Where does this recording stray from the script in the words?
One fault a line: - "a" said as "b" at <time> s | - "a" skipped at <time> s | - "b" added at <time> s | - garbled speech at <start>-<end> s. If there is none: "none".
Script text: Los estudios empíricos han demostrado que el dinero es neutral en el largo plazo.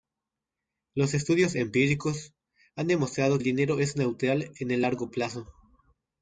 - "que" skipped at 3.4 s